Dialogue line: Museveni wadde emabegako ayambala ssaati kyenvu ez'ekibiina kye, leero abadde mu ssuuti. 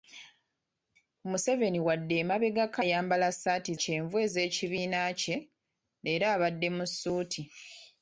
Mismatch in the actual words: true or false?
false